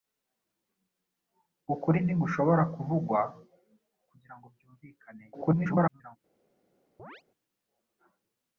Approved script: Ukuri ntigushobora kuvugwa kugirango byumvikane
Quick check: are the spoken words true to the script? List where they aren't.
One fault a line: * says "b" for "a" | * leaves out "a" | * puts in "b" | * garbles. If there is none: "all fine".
* garbles